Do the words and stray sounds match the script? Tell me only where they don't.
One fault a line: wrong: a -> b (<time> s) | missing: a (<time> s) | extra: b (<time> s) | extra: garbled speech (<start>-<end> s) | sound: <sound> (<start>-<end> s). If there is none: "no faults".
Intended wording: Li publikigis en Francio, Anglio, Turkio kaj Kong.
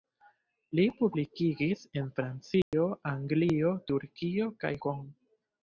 sound: dropout (2.6-2.7 s)